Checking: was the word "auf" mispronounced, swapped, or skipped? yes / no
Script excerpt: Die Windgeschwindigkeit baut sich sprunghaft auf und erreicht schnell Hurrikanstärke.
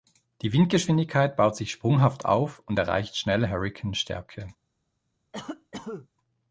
no